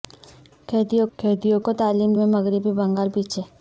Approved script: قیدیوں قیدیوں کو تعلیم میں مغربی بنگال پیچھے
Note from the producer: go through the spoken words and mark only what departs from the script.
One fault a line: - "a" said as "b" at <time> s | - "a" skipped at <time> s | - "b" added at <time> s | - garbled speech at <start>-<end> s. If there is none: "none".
none